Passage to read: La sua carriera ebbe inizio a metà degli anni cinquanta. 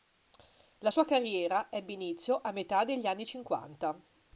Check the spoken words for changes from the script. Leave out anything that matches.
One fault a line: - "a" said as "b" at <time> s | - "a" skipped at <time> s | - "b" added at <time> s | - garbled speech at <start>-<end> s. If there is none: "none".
none